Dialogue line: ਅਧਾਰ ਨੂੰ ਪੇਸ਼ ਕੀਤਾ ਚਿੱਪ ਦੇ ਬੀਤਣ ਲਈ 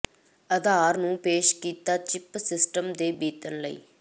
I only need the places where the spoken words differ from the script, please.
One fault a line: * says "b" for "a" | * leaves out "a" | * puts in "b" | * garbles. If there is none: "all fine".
* puts in "ਸਿਸਟਮ"